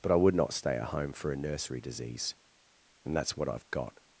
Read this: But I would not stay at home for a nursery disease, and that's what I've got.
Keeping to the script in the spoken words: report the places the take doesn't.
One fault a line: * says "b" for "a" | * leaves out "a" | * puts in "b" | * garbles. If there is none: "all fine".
all fine